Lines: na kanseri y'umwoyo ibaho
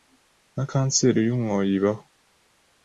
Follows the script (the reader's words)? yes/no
yes